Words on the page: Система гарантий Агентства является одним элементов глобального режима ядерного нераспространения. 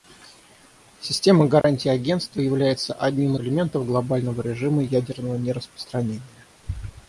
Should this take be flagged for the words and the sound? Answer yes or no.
yes